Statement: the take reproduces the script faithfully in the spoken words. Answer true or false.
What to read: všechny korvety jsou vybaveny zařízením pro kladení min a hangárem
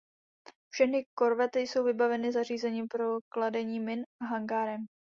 true